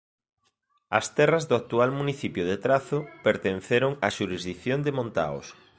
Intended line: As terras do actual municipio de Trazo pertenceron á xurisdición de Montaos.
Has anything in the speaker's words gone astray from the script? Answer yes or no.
no